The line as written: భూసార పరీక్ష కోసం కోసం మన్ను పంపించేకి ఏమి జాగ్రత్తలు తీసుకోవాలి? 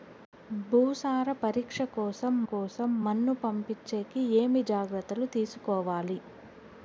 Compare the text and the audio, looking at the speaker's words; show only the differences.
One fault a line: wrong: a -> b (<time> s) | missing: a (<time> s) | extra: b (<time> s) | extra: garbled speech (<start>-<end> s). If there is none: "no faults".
no faults